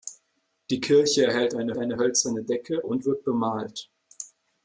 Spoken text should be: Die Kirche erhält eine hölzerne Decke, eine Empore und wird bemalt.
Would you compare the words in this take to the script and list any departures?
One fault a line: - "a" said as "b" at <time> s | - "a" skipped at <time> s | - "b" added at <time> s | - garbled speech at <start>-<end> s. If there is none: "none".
- "eine" added at 1.8 s
- "eine Empore" skipped at 2.8 s